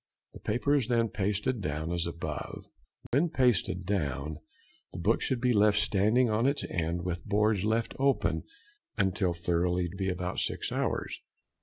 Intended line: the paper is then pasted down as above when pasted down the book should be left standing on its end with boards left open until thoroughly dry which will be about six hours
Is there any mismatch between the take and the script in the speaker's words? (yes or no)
yes